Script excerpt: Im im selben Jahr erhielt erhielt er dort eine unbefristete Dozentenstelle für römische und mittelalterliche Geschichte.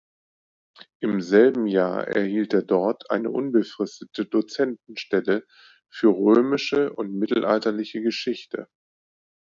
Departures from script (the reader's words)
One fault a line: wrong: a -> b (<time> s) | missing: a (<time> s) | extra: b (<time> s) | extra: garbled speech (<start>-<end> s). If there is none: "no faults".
missing: im (1.2 s)
missing: erhielt (2.5 s)